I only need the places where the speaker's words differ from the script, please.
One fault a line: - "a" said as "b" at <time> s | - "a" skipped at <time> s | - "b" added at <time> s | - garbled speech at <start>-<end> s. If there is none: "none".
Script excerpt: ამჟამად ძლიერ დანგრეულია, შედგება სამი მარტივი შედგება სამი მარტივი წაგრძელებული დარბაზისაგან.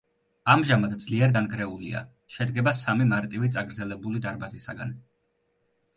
- "შედგება სამი მარტივი" skipped at 3.5 s